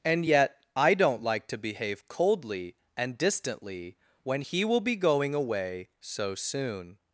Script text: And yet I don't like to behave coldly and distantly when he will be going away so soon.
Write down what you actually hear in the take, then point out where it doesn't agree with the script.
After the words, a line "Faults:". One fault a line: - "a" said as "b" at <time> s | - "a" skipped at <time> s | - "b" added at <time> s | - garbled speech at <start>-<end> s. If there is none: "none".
And yet I don't like to behave coldly and distantly when he will be going away so soon.
Faults:
none